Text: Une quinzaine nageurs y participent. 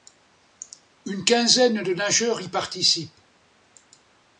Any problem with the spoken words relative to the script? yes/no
yes